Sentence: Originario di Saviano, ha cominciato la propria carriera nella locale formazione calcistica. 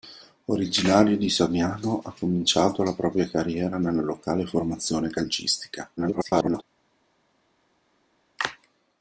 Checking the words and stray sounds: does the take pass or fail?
fail